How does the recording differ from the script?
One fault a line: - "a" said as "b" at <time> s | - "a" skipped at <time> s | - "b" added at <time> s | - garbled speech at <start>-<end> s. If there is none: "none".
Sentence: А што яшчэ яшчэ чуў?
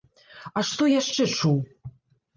- "яшчэ" skipped at 1.2 s